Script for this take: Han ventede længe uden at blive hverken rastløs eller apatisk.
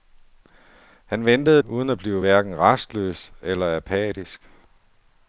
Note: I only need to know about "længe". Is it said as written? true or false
false